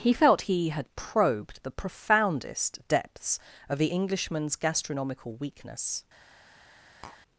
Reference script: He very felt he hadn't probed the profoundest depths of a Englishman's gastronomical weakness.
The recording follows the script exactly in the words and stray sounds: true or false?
false